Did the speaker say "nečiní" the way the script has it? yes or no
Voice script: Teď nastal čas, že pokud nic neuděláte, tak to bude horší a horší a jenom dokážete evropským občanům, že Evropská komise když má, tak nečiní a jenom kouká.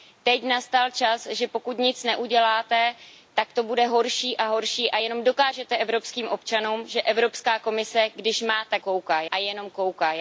no